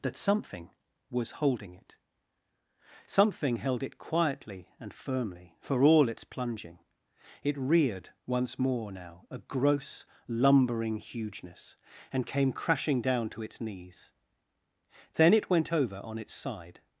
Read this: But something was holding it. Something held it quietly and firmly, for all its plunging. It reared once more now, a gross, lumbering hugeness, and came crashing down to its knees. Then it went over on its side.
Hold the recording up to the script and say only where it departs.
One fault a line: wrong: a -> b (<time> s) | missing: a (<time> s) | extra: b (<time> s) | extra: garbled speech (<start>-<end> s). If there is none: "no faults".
wrong: But -> That (0.0 s)